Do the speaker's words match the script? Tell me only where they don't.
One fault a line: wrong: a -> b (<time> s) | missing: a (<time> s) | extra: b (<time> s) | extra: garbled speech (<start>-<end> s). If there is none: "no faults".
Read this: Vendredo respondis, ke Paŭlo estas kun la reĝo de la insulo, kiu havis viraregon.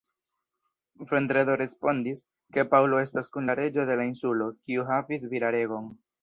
no faults